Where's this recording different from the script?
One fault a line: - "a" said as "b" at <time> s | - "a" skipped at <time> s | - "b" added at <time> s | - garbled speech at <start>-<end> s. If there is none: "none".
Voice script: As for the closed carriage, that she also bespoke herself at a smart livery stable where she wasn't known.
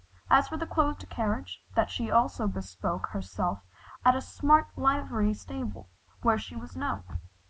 - "wasn't" said as "was" at 6.6 s